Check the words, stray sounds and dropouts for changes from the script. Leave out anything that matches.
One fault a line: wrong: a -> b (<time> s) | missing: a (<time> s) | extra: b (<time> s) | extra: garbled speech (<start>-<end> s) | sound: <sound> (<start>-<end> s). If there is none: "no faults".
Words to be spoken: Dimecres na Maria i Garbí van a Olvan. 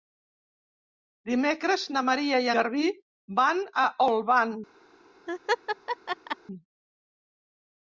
sound: laugh (5.3-6.4 s)